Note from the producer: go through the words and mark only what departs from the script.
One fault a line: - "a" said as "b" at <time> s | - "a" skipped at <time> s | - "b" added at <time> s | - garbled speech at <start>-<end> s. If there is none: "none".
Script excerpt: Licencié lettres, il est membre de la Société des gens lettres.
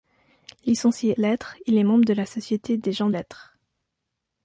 none